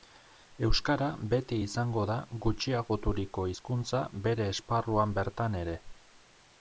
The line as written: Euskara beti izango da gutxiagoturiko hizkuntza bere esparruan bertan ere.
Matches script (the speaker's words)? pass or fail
pass